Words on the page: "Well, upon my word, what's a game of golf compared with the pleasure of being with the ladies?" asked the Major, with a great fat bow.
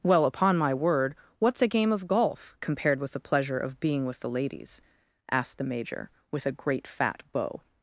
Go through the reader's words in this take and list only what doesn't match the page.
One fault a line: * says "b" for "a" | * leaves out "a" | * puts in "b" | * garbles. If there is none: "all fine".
all fine